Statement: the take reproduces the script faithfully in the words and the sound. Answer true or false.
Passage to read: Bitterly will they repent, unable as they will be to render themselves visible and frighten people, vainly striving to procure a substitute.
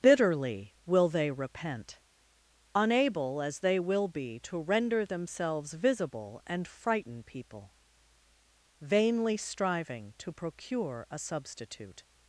true